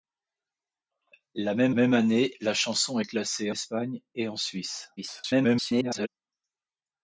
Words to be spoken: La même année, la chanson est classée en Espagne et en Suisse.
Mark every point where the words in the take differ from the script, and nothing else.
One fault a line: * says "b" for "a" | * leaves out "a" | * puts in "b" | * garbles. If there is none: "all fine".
* puts in "même"
* leaves out "en"
* garbles